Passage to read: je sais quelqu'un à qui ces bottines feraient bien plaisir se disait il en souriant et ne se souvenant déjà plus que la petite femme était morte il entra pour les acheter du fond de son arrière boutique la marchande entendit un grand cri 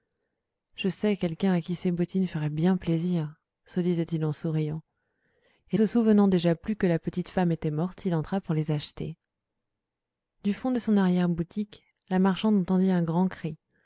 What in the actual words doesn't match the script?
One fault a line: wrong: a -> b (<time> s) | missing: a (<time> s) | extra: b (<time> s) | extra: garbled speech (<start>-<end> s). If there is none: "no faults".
missing: ne (5.8 s)